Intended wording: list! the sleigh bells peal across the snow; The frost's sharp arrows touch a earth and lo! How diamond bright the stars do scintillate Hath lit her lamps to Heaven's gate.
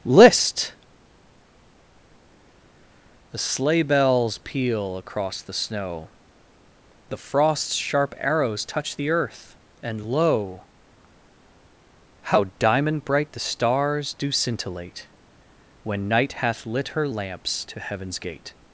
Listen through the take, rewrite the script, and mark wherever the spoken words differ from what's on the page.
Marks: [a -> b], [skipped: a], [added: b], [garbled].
list! the sleigh bells peal across the snow; The frost's sharp arrows touch [a -> the] earth and lo! How diamond bright the stars do scintillate [added: When Night] Hath lit her lamps to Heaven's gate.